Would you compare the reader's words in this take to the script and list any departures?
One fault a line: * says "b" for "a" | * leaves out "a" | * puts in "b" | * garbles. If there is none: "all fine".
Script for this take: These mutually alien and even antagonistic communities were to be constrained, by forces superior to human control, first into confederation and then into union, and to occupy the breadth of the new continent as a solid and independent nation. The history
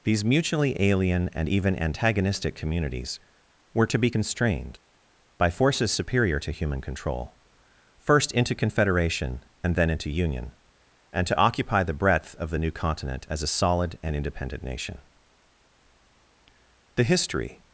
all fine